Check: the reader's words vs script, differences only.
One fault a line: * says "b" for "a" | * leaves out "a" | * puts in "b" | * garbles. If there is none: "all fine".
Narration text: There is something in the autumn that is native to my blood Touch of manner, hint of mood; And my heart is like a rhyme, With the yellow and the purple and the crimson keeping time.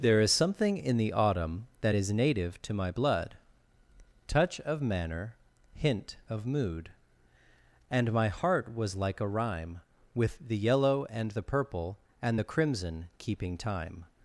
* says "was" for "is"